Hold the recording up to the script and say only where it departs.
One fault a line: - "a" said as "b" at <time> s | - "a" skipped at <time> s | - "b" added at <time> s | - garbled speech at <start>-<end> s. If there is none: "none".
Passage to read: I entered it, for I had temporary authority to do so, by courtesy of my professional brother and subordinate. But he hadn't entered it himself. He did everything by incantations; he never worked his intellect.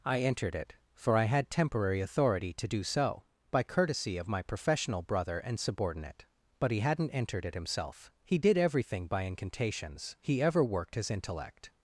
- "never" said as "ever" at 10.4 s